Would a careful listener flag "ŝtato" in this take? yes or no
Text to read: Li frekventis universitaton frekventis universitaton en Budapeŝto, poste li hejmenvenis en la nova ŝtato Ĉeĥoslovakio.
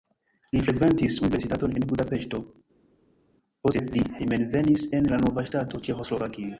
no